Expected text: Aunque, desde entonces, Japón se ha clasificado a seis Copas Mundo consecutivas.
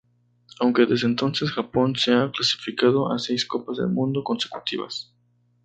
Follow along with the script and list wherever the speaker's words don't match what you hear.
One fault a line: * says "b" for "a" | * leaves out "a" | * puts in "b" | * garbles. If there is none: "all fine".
* puts in "del"